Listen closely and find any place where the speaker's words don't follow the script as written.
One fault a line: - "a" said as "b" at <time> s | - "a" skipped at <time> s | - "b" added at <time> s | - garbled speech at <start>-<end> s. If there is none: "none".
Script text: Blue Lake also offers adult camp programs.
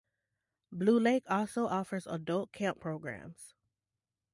none